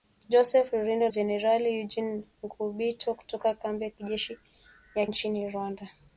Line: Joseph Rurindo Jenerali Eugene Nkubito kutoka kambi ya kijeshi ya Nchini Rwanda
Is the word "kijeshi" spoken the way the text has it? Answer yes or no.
yes